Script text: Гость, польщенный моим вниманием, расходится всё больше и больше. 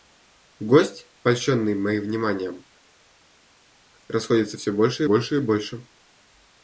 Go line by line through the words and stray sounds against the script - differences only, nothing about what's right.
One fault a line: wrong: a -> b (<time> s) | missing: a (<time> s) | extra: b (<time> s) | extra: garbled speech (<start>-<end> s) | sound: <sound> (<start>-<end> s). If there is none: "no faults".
extra: больше (5.0 s)